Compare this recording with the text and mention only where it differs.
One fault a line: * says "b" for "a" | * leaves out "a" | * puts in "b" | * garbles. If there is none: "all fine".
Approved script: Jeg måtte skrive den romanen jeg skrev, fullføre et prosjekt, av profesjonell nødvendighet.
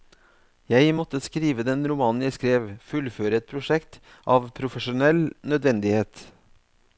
all fine